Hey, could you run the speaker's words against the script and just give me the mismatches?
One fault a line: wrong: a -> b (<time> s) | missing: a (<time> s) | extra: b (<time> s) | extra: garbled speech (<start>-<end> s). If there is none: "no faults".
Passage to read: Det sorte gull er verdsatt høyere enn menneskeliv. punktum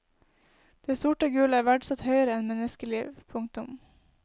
no faults